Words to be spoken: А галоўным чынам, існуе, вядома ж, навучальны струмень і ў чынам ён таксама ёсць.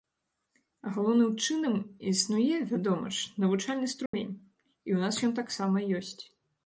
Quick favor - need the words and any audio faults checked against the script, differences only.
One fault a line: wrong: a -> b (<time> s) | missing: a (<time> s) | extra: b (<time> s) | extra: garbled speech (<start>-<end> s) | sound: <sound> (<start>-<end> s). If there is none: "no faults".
sound: dropout (4.1-4.1 s)
wrong: чынам -> нас (5.0 s)